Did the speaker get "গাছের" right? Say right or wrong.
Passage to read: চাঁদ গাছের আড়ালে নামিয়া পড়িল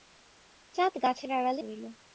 right